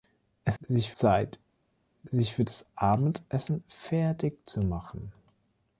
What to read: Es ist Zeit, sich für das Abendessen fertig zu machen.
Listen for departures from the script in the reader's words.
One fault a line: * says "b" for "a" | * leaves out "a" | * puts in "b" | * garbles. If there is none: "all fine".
* says "sich" for "ist"